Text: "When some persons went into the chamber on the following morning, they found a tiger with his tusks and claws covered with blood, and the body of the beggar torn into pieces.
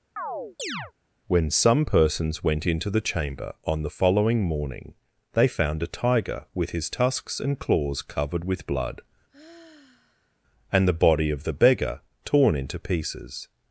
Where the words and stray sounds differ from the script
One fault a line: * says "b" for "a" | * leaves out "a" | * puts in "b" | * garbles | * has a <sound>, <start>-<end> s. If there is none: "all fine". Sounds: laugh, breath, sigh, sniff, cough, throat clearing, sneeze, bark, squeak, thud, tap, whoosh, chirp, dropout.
* has a chirp, 0.2-0.9 s
* has a sigh, 9.3-10.4 s